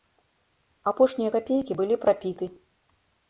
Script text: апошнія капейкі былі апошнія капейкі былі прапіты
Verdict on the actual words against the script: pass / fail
fail